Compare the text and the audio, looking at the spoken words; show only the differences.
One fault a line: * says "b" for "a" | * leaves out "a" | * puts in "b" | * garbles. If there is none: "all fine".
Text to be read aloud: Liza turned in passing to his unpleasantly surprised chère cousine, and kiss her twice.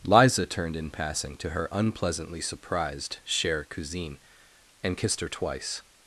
* says "her" for "his"
* says "kissed" for "kiss"